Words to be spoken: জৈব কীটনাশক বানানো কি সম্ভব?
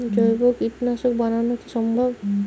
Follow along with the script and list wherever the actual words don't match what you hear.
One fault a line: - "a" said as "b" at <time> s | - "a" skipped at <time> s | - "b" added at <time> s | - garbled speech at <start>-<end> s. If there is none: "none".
none